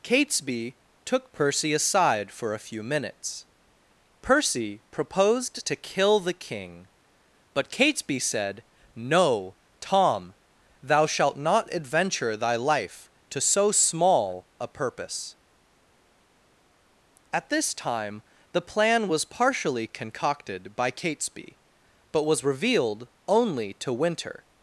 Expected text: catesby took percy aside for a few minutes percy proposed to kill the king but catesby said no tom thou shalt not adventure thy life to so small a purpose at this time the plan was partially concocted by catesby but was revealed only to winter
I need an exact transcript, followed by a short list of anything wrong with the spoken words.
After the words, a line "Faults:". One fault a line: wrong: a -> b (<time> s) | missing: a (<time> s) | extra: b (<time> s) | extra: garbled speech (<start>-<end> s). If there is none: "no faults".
catesby took percy aside for a few minutes percy proposed to kill the king but catesby said no tom thou shalt not adventure thy life to so small a purpose at this time the plan was partially concocted by catesby but was revealed only to winter
Faults:
no faults